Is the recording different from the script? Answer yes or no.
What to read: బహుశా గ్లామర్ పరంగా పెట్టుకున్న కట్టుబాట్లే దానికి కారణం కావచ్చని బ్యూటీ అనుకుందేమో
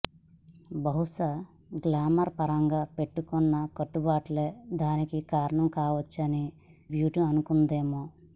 no